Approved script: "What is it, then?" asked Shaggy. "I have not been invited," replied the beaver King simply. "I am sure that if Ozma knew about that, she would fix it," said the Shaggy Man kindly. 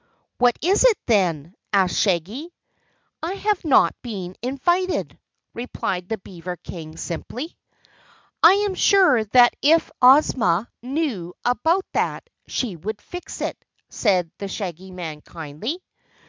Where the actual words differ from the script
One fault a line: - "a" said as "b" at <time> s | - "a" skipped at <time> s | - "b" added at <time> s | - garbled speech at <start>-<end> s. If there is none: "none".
none